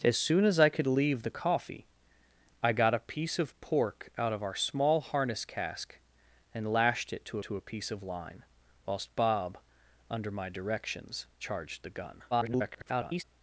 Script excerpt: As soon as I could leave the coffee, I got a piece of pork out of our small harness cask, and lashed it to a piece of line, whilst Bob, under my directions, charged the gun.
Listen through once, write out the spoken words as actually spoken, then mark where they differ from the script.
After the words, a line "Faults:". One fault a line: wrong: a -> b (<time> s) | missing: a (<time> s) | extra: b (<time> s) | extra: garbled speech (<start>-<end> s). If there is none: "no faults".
As soon as I could leave the coffee, I got a piece of pork out of our small harness cask, and lashed it to to a piece of line, whilst Bob, under my directions, charged the gun. [garbled]
Faults:
extra: to (7.4 s)
extra: garbled speech (12.3-13.2 s)